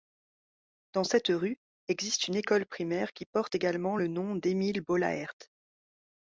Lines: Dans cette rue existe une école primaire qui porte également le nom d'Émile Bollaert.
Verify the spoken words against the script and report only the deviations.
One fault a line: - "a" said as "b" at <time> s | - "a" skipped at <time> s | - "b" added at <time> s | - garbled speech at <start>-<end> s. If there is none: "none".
none